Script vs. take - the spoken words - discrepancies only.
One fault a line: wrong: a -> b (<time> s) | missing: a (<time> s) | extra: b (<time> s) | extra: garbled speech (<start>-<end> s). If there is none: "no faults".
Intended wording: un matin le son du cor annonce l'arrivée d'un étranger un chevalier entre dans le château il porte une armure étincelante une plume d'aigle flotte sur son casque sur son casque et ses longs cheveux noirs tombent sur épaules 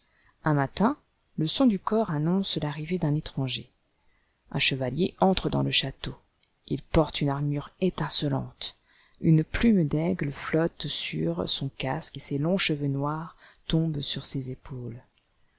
missing: sur son casque (12.2 s)
extra: ses (14.3 s)